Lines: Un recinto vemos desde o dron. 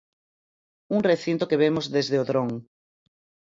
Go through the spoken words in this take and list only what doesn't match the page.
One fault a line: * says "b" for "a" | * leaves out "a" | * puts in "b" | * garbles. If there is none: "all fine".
* puts in "que"